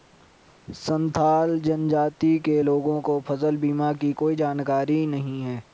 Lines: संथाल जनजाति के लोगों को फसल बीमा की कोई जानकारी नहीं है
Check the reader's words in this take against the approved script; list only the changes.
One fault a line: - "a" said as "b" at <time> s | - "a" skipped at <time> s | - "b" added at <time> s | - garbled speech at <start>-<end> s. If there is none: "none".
none